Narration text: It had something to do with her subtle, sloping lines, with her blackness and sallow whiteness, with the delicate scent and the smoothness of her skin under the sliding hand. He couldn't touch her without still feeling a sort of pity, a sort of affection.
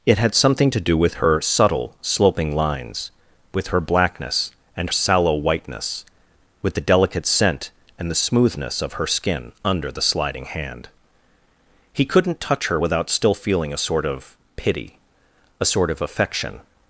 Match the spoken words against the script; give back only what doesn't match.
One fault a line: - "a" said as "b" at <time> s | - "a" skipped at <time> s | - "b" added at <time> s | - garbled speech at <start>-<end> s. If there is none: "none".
none